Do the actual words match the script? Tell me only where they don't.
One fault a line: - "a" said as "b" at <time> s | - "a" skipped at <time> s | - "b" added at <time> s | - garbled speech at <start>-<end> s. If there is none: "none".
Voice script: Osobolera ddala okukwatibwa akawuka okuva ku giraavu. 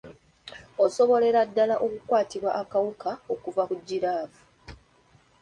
none